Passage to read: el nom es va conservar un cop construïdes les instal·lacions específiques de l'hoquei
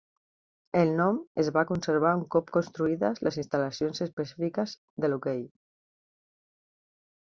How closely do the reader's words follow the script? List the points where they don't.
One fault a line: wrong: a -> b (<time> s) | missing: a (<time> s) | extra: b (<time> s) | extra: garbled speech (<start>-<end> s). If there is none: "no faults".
no faults